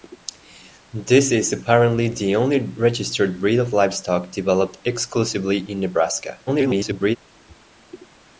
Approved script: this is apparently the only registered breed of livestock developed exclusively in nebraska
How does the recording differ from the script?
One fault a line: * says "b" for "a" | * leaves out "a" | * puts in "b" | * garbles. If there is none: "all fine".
* garbles